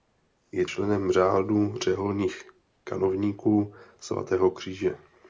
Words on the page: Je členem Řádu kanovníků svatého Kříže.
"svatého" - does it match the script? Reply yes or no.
yes